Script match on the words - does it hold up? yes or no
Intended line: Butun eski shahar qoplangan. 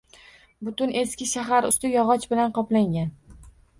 no